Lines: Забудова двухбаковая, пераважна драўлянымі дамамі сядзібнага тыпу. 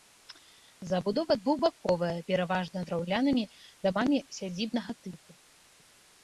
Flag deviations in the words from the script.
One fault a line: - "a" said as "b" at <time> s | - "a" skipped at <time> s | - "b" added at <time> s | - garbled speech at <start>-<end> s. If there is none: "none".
none